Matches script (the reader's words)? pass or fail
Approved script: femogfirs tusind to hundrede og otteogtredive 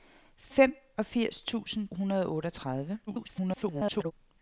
fail